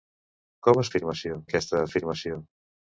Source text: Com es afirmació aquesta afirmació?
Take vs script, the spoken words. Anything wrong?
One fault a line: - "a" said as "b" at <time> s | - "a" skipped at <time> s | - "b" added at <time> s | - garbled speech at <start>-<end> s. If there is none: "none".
none